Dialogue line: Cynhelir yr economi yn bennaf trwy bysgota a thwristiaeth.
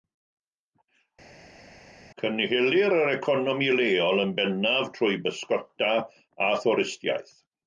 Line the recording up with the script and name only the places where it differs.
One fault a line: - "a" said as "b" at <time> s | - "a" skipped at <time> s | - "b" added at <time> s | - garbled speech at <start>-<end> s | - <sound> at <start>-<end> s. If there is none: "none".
- "leol" added at 3.8 s